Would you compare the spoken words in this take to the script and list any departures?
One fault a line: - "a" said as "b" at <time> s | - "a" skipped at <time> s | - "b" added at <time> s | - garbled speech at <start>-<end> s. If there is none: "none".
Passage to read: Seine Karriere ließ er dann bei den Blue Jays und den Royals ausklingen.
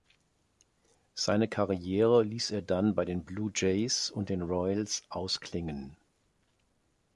none